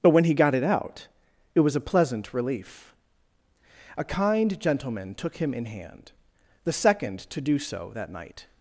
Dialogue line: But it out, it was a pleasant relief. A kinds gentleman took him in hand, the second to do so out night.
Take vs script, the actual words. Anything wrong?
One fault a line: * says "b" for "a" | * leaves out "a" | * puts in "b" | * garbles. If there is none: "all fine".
* puts in "when he got"
* says "kind" for "kinds"
* says "that" for "out"